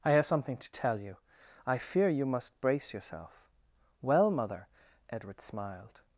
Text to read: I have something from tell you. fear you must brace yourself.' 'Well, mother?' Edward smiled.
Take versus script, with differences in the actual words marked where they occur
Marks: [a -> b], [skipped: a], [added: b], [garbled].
I have something [from -> to] tell you. [added: I] fear you must brace yourself.' 'Well, mother?' Edward smiled.